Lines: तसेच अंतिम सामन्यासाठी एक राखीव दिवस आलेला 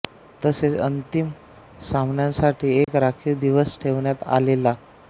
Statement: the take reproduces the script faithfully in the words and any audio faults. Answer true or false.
false